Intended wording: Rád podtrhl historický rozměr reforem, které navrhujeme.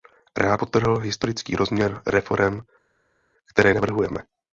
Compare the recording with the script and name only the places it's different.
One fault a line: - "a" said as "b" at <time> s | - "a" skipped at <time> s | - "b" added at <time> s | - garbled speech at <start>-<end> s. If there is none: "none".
none